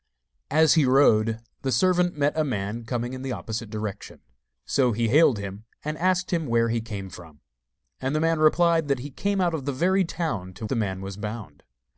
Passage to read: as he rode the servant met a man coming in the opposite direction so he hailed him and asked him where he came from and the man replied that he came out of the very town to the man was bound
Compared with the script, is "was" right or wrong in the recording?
right